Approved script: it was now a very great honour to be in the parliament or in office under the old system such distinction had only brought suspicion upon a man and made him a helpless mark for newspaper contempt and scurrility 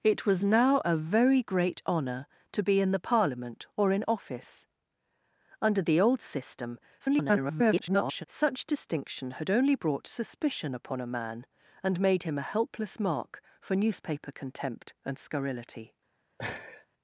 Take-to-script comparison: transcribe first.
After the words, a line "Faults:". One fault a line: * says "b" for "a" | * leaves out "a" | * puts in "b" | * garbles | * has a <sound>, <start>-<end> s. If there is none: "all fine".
it was now a very great honour to be in the parliament or in office under the old system [garbled] such distinction had only brought suspicion upon a man and made him a helpless mark for newspaper contempt and scurrility
Faults:
* garbles
* has a laugh, 16.4-16.9 s